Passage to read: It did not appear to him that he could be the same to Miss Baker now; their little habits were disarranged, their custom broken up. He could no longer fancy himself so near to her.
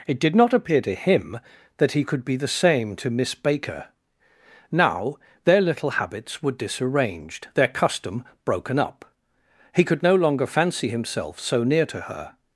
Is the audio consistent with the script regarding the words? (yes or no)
yes